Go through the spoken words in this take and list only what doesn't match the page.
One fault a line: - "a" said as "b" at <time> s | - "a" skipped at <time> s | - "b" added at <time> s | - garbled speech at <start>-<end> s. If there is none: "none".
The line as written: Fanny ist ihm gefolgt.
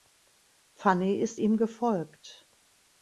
none